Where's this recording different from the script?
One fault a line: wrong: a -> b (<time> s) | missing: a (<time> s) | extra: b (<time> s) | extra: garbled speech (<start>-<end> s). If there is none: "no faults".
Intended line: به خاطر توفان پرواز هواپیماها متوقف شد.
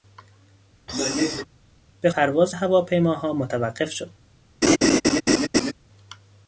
missing: خاطر توفان (2.1 s)